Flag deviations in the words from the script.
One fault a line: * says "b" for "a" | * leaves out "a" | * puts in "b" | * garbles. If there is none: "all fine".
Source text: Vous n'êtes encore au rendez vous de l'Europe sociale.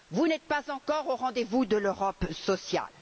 * puts in "pas"